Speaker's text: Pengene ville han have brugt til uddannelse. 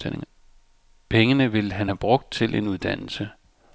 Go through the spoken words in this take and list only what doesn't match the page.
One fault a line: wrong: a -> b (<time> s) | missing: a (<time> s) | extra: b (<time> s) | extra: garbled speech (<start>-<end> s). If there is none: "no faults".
extra: en (2.5 s)